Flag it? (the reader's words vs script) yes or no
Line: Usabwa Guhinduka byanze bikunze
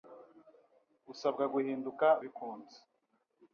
yes